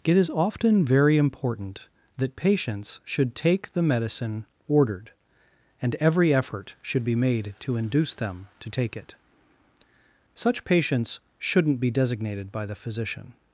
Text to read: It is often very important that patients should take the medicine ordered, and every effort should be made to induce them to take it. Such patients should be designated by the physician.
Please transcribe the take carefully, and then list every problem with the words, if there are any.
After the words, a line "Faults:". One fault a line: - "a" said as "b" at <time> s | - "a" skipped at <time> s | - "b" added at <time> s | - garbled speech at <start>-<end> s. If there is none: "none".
It is often very important that patients should take the medicine ordered, and every effort should be made to induce them to take it. Such patients shouldn't be designated by the physician.
Faults:
- "should" said as "shouldn't" at 11.4 s